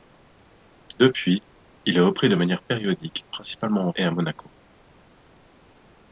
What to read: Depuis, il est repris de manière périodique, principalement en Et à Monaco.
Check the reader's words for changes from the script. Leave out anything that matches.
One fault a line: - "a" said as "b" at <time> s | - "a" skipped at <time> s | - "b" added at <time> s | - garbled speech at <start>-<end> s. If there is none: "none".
none